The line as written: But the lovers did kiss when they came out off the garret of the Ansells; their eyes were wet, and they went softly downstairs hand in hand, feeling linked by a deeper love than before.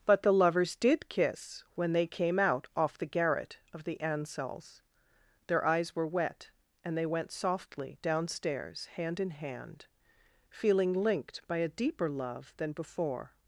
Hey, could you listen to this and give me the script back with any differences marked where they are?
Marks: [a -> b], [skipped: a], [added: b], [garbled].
But the lovers did kiss when they came out off the garret of the Ansells; their eyes were wet, and they went softly downstairs hand in hand, feeling linked by a deeper love than before.